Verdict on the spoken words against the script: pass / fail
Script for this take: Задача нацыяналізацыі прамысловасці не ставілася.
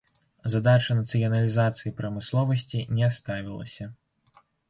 pass